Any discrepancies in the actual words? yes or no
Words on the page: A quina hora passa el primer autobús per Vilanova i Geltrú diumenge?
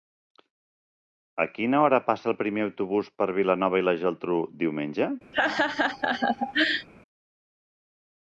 yes